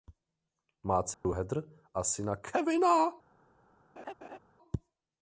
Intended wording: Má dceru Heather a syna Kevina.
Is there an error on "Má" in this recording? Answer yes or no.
no